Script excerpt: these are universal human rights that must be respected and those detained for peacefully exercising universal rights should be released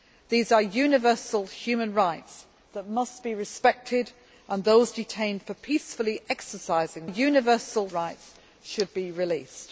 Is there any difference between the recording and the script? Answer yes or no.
no